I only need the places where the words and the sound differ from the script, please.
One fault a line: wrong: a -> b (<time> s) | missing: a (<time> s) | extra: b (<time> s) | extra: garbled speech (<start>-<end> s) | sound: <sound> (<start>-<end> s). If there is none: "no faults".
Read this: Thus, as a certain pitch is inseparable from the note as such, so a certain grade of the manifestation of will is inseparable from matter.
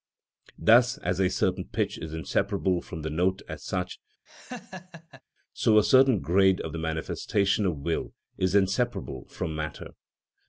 sound: laugh (4.3-5.2 s)